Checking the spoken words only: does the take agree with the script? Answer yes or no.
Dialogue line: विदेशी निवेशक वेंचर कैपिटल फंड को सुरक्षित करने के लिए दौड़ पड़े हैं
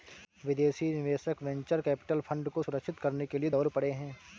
yes